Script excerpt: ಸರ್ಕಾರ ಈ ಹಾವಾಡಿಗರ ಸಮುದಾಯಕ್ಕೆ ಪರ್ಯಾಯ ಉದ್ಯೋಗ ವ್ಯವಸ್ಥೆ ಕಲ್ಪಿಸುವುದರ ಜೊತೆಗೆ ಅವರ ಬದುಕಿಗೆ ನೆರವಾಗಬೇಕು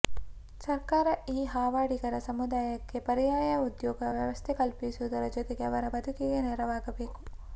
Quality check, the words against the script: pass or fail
pass